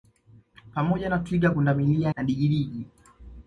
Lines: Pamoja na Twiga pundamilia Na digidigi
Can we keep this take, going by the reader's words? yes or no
yes